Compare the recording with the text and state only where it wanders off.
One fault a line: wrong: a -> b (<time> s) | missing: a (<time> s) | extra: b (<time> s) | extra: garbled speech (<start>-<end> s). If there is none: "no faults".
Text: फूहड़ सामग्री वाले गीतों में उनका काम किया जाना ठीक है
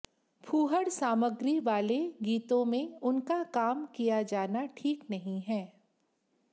extra: नहीं (5.1 s)